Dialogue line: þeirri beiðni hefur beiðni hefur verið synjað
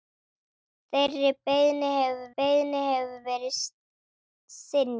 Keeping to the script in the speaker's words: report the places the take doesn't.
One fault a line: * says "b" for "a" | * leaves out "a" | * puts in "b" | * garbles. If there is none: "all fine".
all fine